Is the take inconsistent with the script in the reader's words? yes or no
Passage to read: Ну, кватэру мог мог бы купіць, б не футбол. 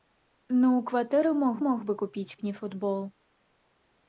no